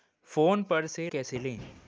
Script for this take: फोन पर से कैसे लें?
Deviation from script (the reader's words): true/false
false